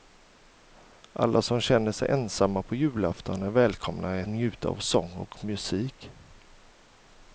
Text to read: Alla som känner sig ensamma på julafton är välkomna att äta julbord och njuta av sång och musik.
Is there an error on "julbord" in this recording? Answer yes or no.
yes